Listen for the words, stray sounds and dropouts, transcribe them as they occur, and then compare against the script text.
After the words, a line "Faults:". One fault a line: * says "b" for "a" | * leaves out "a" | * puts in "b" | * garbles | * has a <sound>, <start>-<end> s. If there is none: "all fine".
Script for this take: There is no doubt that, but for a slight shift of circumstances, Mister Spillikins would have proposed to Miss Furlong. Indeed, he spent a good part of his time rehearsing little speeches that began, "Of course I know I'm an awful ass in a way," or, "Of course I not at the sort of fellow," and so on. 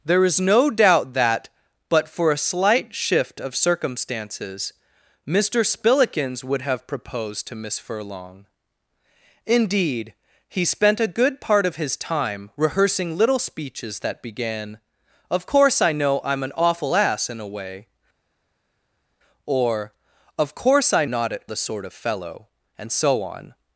There is no doubt that, but for a slight shift of circumstances, Mister Spillikins would have proposed to Miss Furlong. Indeed, he spent a good part of his time rehearsing little speeches that began, "Of course I know I'm an awful ass in a way," or, "Of course I not at the sort of fellow," and so on.
Faults:
all fine